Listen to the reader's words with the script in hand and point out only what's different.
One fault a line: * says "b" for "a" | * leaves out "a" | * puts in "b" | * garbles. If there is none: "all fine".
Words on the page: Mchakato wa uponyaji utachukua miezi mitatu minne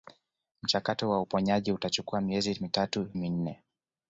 all fine